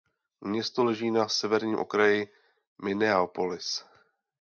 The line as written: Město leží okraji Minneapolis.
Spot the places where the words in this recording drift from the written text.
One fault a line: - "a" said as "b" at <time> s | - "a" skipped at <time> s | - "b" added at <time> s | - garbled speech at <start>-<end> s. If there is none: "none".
- "na severním" added at 1.1 s